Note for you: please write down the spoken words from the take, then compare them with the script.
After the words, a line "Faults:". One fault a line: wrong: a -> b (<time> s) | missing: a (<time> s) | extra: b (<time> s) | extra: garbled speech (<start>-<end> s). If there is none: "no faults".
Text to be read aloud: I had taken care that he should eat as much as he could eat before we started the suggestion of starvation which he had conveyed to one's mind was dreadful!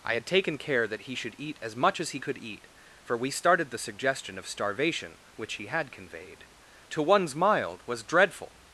I had taken care that he should eat as much as he could eat for we started the suggestion of starvation which he had conveyed to one's mild was dreadful!
Faults:
wrong: before -> for (3.0 s)
wrong: mind -> mild (7.4 s)